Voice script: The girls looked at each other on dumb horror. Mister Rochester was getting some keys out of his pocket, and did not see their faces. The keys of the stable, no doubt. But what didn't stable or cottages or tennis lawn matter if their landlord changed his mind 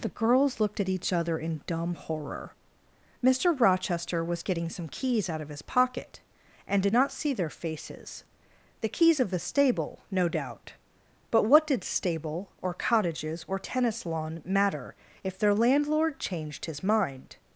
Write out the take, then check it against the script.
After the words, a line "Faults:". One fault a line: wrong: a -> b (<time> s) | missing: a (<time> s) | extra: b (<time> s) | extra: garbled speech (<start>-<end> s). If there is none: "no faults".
The girls looked at each other in dumb horror. Mister Rochester was getting some keys out of his pocket, and did not see their faces. The keys of the stable, no doubt. But what did stable or cottages or tennis lawn matter if their landlord changed his mind
Faults:
wrong: on -> in (1.4 s)
wrong: didn't -> did (11.6 s)